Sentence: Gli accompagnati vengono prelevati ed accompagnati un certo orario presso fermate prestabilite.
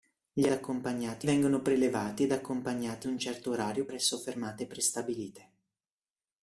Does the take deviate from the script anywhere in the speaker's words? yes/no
no